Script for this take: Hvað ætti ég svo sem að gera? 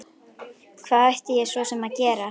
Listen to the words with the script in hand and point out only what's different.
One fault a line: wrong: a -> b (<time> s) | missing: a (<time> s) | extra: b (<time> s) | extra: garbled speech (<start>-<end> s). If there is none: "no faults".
no faults